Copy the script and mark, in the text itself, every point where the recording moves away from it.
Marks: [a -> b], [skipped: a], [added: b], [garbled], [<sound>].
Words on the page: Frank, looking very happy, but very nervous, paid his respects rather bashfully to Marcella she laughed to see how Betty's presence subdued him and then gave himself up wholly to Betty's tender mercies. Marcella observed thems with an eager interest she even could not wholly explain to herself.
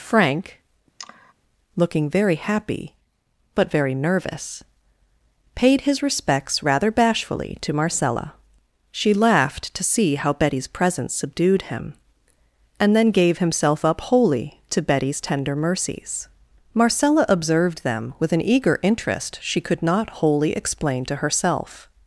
Frank, [sigh] looking very happy, but very nervous, paid his respects rather bashfully to Marcella she laughed to see how Betty's presence subdued him and then gave himself up wholly to Betty's tender mercies. Marcella observed [thems -> them] with an eager interest she [skipped: even] could not wholly explain to herself.